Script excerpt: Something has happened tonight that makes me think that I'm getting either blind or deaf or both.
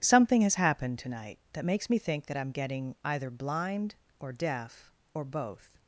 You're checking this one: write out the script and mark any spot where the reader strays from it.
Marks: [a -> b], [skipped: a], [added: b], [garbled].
Something has happened tonight that makes me think that I'm getting either blind or deaf or both.